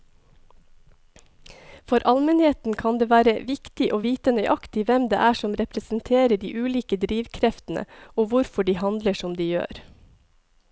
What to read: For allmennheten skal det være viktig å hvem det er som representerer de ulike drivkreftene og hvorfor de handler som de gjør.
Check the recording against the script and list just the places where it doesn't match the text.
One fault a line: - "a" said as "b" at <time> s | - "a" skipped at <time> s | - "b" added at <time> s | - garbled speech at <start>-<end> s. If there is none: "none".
- "skal" said as "kan" at 2.8 s
- "vite nøyaktig" added at 4.1 s